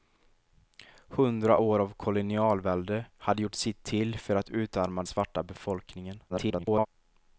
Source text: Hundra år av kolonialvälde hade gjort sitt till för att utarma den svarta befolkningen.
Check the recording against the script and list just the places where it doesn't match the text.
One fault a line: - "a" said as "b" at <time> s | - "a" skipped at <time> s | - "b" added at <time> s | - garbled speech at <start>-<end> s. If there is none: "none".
- "den" skipped at 5.0 s
- garbled speech at 6.3-6.9 s